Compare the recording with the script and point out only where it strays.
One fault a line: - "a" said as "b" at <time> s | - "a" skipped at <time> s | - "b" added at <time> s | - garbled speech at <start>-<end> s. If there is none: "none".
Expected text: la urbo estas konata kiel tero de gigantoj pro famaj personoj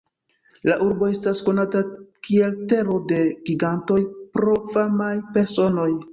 none